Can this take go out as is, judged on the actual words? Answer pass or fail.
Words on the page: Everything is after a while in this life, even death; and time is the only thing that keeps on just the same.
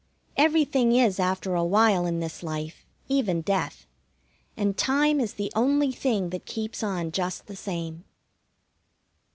pass